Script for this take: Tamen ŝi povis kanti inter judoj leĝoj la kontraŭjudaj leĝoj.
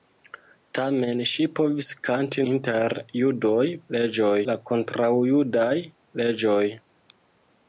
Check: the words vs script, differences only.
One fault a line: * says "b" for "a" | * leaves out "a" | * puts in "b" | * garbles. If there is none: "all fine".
all fine